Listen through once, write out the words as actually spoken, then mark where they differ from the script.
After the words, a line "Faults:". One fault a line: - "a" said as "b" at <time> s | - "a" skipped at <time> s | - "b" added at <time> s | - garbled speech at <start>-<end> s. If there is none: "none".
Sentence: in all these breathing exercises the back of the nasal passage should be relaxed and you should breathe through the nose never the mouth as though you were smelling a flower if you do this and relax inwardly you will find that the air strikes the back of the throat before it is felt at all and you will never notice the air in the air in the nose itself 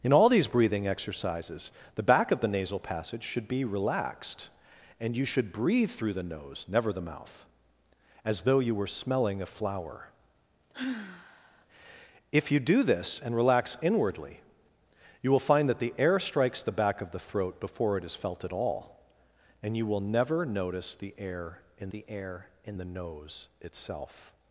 in all these breathing exercises the back of the nasal passage should be relaxed and you should breathe through the nose never the mouth as though you were smelling a flower if you do this and relax inwardly you will find that the air strikes the back of the throat before it is felt at all and you will never notice the air in the air in the nose itself
Faults:
none